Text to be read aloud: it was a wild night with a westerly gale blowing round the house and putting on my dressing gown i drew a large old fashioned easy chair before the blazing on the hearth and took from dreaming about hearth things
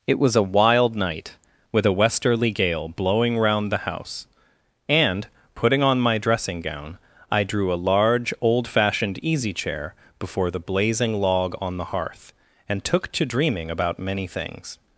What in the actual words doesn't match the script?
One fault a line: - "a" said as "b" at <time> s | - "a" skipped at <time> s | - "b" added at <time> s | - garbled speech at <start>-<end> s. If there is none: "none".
- "log" added at 11.2 s
- "from" said as "to" at 13.1 s
- "hearth" said as "many" at 14.0 s